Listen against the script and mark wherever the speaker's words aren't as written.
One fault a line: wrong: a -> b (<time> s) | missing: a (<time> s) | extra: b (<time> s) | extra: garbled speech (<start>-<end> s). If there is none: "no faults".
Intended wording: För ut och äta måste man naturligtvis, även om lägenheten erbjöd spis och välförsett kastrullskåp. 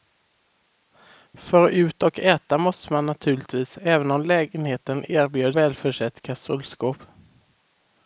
missing: spis och (5.6 s)